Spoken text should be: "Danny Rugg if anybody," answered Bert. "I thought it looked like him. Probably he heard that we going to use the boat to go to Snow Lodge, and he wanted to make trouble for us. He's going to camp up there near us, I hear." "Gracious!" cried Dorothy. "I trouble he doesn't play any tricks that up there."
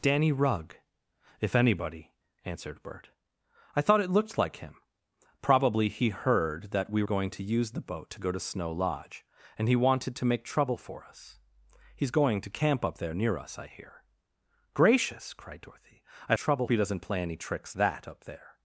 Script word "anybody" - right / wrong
right